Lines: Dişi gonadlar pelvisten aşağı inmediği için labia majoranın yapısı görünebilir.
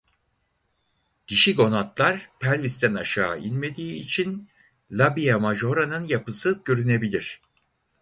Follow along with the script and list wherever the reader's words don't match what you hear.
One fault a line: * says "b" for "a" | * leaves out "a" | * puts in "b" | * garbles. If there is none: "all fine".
all fine